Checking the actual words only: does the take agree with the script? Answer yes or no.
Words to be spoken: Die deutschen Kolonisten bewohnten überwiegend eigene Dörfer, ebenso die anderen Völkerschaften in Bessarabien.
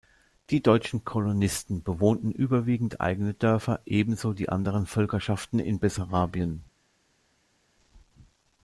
yes